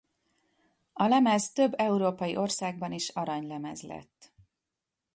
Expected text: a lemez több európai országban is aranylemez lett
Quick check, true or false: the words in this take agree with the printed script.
true